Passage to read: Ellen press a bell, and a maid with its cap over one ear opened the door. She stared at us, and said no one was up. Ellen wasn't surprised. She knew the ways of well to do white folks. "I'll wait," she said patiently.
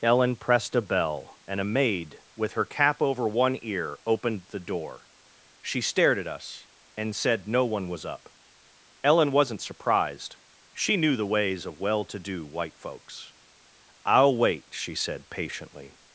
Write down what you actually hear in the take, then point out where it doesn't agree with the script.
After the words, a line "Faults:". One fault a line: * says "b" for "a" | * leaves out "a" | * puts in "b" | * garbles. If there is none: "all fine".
Ellen pressed a bell, and a maid with her cap over one ear opened the door. She stared at us, and said no one was up. Ellen wasn't surprised. She knew the ways of well to do white folks. "I'll wait," she said patiently.
Faults:
* says "pressed" for "press"
* says "her" for "its"